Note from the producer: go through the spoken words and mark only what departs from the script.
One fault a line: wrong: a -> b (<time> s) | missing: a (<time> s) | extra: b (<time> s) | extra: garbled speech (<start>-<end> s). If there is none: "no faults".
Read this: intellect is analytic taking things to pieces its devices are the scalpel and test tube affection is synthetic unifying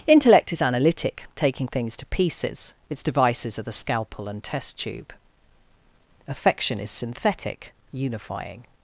no faults